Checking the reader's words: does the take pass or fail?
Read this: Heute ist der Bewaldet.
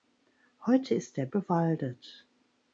pass